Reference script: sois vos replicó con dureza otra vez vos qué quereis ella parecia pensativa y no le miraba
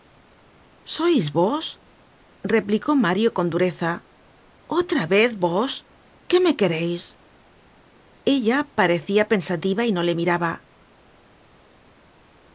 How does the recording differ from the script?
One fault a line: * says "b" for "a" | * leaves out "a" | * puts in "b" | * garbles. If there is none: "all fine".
* puts in "mario"
* puts in "me"